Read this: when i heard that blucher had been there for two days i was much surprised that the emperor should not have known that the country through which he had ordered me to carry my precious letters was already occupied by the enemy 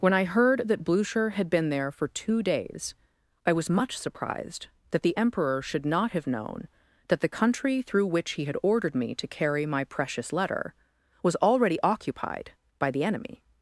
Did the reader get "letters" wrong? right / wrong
wrong